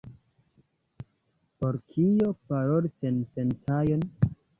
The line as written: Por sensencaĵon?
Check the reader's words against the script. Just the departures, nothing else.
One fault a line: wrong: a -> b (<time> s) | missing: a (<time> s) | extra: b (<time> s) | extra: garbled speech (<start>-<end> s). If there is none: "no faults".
extra: kio paroli (1.9 s)